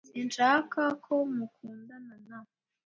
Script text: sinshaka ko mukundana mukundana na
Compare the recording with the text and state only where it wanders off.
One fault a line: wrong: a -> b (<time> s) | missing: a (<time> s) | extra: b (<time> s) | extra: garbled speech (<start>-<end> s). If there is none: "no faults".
missing: mukundana (2.1 s)